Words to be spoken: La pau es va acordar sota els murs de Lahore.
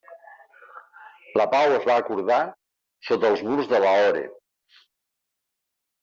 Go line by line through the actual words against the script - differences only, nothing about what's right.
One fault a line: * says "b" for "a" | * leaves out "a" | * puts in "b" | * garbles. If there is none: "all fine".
all fine